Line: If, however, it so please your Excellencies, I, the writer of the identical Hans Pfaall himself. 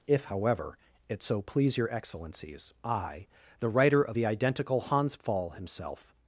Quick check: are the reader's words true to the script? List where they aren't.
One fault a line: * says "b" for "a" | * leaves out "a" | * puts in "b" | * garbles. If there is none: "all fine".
all fine